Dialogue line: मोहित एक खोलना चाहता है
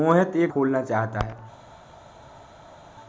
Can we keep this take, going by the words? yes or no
yes